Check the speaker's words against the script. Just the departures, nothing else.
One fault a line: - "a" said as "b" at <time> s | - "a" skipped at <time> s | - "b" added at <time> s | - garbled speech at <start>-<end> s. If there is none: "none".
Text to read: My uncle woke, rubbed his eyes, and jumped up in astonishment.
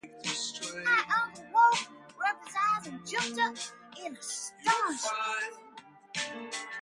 none